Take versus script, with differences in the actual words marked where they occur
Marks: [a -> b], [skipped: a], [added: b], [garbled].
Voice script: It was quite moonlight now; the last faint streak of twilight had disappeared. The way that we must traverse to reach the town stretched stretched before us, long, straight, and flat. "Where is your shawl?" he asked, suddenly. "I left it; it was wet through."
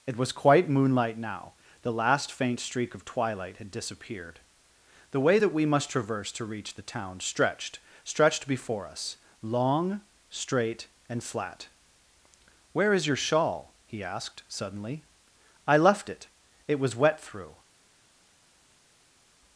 It was quite moonlight now; the last faint streak of twilight had disappeared. The way that we must traverse to reach the town stretched stretched before us, long, straight, and flat. "Where is your shawl?" he asked, suddenly. "I left it; it was wet through."